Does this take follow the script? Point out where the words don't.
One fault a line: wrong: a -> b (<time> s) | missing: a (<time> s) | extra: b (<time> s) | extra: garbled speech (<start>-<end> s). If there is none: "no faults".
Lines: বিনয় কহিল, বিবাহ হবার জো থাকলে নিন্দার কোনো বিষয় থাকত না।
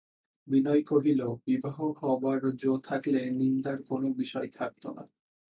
no faults